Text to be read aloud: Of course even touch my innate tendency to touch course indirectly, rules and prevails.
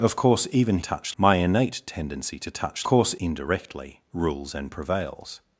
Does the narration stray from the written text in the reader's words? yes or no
no